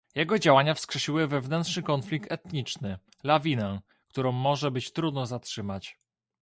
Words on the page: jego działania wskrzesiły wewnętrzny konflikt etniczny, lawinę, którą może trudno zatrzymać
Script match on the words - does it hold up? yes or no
no